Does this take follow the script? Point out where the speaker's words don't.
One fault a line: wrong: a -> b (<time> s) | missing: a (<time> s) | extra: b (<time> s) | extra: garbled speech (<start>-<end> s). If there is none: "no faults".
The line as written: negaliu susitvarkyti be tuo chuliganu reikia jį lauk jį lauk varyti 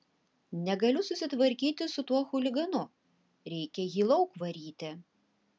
wrong: be -> su (1.9 s)
missing: jį lauk (4.4 s)